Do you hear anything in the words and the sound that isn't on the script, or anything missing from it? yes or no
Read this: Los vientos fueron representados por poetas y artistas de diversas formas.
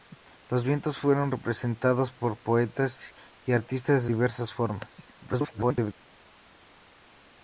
yes